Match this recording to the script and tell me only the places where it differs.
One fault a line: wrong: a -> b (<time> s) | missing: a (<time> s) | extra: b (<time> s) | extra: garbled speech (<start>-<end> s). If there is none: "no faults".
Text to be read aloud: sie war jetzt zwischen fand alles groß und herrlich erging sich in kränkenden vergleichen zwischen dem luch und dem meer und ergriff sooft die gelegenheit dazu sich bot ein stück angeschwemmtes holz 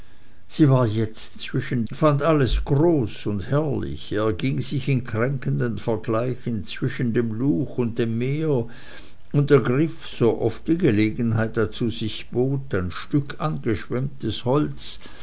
no faults